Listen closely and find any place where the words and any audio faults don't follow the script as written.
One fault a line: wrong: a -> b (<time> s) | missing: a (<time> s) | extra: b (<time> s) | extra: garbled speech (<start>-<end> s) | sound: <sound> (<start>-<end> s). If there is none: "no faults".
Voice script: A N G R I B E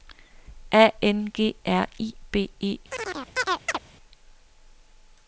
sound: chirp (2.9-3.8 s)